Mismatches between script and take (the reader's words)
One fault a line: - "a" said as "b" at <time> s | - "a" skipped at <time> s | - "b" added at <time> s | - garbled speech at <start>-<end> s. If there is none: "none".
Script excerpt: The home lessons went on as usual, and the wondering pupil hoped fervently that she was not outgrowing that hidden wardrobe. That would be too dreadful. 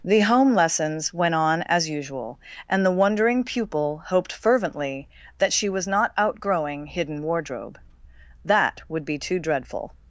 - "that" skipped at 6.9 s